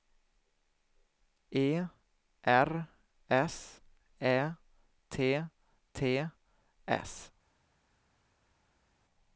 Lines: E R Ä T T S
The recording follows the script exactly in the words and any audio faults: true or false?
false